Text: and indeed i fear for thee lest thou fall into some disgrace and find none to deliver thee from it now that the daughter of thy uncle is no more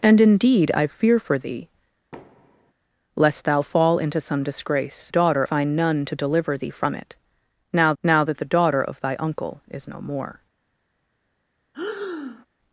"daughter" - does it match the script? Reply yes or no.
yes